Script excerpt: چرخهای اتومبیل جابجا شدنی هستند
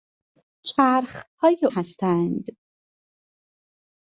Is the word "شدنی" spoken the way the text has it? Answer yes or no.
no